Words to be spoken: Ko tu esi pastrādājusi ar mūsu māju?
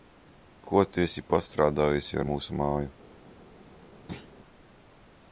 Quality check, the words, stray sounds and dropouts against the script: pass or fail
fail